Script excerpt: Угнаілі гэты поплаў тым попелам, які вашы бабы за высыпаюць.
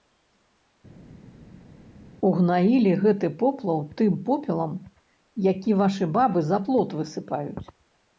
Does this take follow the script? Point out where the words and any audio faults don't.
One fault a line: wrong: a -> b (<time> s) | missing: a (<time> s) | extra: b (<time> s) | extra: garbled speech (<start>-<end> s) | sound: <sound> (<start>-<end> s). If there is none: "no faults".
extra: плот (6.7 s)